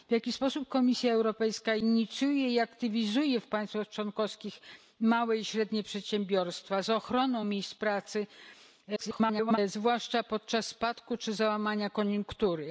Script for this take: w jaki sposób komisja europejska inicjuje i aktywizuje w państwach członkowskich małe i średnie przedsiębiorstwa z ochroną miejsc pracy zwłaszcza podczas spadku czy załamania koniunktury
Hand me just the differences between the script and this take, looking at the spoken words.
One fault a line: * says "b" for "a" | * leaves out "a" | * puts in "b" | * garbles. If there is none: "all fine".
* garbles